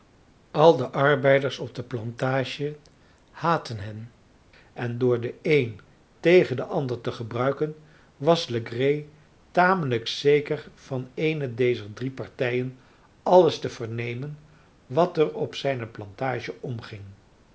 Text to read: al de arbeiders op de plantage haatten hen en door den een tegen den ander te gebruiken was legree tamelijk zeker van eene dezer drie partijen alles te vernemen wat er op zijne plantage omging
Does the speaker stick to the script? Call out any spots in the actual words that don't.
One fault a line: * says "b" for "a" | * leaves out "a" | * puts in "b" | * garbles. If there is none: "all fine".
all fine